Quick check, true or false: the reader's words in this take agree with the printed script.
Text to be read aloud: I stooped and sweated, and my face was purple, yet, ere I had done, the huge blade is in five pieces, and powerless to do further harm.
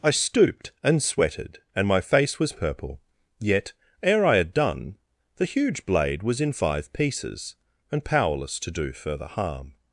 false